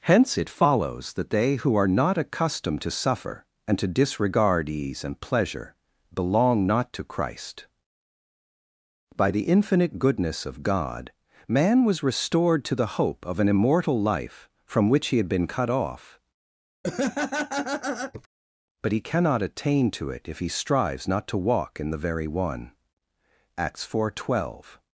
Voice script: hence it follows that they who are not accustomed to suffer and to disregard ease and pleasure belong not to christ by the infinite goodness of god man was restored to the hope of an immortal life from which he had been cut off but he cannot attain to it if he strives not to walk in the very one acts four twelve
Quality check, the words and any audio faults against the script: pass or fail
fail